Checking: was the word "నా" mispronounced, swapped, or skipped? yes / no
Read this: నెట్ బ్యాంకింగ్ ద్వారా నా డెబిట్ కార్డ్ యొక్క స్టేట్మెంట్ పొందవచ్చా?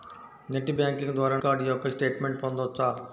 yes